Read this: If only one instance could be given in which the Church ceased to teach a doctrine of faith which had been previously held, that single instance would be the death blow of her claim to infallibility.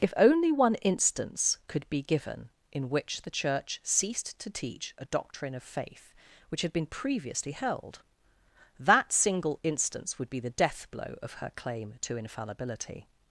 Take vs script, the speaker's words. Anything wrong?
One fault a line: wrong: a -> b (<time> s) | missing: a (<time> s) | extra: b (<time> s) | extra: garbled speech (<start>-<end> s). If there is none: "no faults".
no faults